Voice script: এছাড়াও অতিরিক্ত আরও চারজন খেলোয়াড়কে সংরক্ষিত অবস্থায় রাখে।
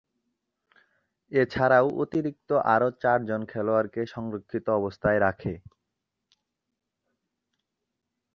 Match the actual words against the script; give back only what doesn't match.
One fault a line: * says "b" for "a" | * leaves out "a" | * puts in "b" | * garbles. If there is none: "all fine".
all fine